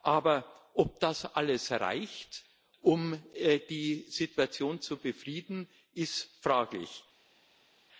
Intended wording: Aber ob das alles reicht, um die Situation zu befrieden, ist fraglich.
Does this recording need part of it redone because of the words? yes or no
no